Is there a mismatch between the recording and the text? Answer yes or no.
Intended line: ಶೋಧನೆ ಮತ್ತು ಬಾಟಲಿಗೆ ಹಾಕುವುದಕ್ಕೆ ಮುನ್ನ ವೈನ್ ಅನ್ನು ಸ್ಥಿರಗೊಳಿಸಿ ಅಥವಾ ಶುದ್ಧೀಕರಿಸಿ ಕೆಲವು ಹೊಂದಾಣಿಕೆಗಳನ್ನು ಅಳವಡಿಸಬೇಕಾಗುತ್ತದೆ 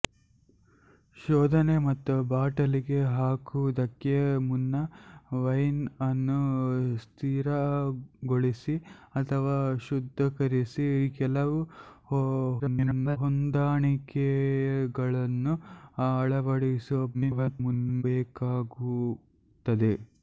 yes